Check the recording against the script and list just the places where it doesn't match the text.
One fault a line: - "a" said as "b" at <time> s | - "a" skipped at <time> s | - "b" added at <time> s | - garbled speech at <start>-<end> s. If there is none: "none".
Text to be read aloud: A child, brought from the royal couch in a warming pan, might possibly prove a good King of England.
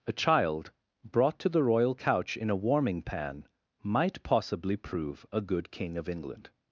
- "from" said as "to" at 1.4 s